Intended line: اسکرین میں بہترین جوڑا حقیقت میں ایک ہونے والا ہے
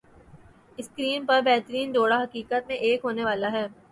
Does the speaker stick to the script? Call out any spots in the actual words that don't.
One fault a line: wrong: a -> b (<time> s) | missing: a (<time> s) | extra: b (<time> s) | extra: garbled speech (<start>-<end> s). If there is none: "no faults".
wrong: میں -> پر (1.2 s)